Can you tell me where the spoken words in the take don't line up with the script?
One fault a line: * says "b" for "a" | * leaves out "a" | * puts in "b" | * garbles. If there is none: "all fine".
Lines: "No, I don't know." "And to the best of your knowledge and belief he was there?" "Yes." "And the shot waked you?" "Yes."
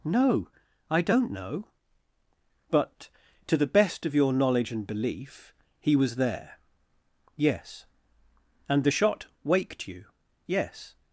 * says "But" for "And"